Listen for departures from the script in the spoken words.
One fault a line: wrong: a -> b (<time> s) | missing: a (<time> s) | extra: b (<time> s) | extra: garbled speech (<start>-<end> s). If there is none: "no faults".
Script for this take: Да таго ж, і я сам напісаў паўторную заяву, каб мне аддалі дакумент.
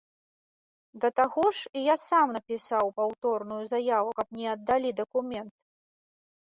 no faults